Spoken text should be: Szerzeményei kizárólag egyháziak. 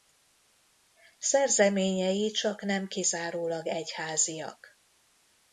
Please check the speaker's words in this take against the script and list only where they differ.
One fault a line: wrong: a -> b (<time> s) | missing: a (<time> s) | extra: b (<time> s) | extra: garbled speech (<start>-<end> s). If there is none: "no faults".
extra: csaknem (2.3 s)